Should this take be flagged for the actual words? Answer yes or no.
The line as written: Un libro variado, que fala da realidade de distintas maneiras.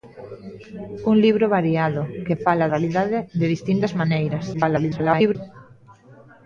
yes